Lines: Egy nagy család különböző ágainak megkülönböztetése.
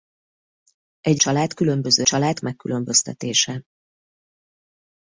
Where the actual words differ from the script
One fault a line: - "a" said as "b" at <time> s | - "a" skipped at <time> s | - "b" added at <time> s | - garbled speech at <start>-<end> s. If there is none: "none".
- "nagy" skipped at 1.2 s
- "ágainak" said as "család" at 2.0 s